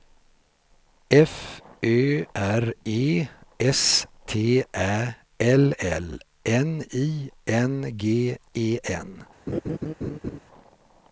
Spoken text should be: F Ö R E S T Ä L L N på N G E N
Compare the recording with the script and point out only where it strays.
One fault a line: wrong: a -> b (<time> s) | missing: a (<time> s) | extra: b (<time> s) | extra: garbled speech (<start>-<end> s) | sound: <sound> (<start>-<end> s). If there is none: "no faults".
wrong: på -> I (6.9 s)
sound: laugh (9.5-10.4 s)